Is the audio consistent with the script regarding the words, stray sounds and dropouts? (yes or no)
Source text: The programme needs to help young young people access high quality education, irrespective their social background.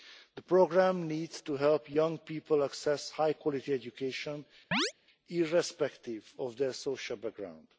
no